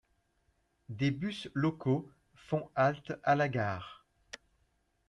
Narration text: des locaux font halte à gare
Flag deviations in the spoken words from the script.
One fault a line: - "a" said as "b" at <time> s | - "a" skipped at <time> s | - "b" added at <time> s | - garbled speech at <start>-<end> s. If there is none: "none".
- "bus" added at 1.1 s
- "la" added at 3.4 s